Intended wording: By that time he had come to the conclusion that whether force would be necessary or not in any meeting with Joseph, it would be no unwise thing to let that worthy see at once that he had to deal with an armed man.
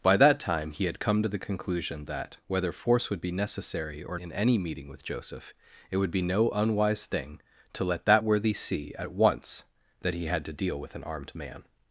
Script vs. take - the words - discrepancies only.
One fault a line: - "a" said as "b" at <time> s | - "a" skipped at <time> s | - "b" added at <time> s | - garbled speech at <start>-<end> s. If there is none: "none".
- "not" skipped at 4.2 s